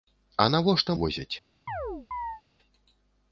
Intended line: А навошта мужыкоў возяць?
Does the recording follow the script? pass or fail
fail